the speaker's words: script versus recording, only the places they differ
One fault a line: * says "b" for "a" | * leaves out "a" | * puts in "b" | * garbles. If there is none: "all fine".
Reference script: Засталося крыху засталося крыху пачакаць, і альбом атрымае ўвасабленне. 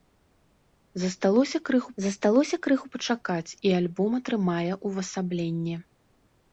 all fine